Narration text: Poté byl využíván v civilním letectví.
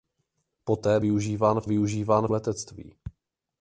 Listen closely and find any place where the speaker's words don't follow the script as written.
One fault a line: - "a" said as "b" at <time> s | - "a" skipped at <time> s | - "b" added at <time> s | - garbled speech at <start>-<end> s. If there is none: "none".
- "byl" skipped at 1.0 s
- "civilním" said as "využíván" at 1.6 s